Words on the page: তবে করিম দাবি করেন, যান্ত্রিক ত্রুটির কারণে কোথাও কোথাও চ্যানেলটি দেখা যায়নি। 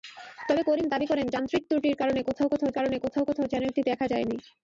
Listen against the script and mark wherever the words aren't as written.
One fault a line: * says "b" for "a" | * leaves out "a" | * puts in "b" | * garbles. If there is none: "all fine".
* puts in "কারণে কোথাও কোথাও"